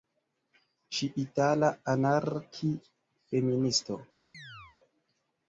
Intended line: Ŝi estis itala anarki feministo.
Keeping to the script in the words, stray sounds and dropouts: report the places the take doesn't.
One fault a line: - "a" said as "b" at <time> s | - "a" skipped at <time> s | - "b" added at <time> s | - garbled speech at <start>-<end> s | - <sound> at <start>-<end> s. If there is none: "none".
- "estis" skipped at 1.1 s
- chirp at 4.3-4.8 s